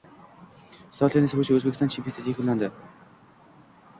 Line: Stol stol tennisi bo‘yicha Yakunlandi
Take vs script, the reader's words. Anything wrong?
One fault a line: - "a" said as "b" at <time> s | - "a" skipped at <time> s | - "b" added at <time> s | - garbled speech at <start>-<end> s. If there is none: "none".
- "stol" skipped at 1.1 s
- "O‘zbekiston chempionati" added at 1.6 s